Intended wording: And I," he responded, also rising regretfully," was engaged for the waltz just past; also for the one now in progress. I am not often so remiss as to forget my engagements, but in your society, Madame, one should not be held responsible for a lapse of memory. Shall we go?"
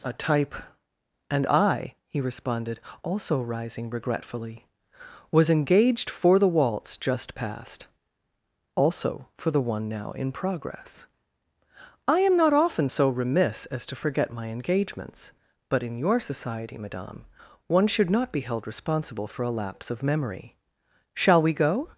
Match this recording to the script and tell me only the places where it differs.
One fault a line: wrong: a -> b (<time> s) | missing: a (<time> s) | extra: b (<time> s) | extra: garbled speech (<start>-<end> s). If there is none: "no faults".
extra: a type (0.0 s)